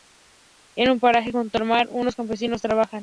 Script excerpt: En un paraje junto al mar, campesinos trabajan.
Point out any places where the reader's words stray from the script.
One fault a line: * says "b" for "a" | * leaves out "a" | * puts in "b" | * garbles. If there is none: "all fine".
* puts in "unos"